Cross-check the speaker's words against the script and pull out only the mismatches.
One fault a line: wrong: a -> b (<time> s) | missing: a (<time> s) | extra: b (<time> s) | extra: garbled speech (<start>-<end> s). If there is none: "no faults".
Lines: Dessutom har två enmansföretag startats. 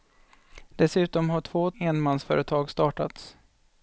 no faults